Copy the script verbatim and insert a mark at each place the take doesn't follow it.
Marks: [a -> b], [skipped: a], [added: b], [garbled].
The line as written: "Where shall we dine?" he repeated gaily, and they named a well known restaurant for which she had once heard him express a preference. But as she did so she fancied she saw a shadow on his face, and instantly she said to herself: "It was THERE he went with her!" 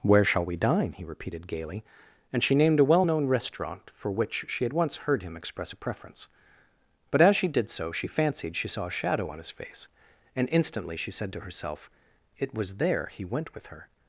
"Where shall we dine?" he repeated gaily, and [they -> she] named a well known restaurant for which she had once heard him express a preference. But as she did so she fancied she saw a shadow on his face, and instantly she said to herself: "It was THERE he went with her!"